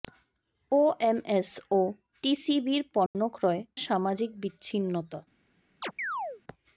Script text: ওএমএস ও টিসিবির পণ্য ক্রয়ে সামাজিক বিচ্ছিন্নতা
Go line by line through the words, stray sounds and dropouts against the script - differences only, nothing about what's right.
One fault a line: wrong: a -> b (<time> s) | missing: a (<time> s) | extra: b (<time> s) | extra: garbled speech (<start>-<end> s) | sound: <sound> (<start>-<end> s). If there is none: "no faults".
sound: dropout (3.1-3.2 s)
sound: chirp (5.8-6.4 s)